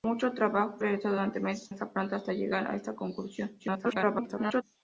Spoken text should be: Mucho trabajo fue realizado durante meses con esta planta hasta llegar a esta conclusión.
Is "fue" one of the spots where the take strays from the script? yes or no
yes